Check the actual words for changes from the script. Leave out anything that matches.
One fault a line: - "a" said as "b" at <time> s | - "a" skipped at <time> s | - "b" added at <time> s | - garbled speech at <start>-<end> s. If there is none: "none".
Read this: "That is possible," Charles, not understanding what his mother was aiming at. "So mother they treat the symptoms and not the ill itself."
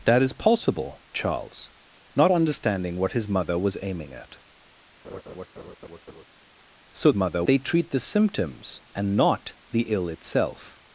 none